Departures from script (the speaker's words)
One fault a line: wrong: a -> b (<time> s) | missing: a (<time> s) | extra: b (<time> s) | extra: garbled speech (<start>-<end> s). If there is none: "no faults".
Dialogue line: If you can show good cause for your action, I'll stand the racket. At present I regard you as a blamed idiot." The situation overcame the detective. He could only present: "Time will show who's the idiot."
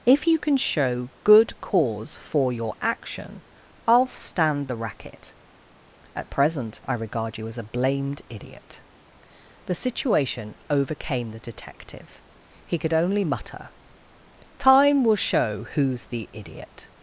wrong: present -> mutter (13.2 s)